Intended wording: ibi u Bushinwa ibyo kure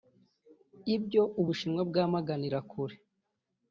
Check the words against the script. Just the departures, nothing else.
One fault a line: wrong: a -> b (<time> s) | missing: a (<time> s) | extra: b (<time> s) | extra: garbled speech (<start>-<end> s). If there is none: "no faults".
wrong: ibi -> ibyo (0.9 s)
wrong: ibyo -> bwamaganira (1.9 s)